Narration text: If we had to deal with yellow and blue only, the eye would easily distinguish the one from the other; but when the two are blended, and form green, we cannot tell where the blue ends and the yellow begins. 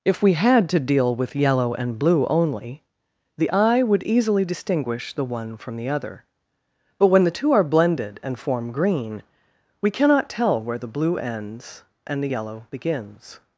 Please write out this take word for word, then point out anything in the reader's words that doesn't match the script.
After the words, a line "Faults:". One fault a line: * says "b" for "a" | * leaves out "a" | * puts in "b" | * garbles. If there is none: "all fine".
If we had to deal with yellow and blue only, the eye would easily distinguish the one from the other; but when the two are blended, and form green, we cannot tell where the blue ends and the yellow begins.
Faults:
all fine